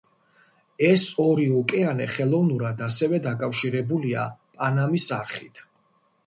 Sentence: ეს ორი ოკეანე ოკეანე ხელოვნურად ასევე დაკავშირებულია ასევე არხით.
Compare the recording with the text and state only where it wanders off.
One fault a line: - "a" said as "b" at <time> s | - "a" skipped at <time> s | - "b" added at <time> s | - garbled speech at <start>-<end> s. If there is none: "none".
- "ოკეანე" skipped at 2.1 s
- "ასევე" said as "პანამის" at 4.6 s